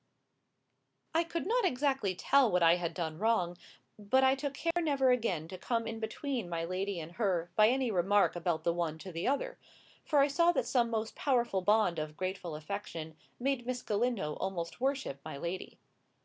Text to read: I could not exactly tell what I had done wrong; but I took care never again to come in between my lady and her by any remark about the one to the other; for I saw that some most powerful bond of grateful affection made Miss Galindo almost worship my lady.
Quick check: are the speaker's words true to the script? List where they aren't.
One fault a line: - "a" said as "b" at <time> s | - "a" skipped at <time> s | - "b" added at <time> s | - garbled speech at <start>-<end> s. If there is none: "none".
none